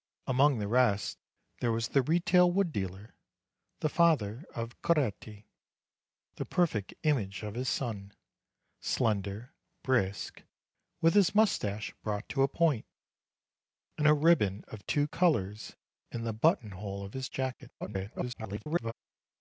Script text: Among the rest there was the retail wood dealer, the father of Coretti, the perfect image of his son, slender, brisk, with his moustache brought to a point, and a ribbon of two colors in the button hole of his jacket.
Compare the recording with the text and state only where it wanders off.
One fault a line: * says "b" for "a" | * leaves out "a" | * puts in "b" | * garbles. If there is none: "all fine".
* garbles